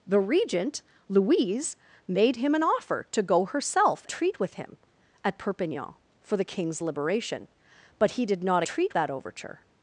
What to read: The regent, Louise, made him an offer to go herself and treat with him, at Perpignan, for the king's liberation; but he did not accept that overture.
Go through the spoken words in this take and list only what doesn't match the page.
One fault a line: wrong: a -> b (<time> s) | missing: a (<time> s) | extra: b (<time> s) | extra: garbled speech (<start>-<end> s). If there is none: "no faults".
missing: and (4.0 s)
wrong: accept -> treat (8.6 s)